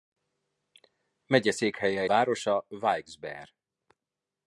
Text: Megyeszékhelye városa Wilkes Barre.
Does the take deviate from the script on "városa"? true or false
false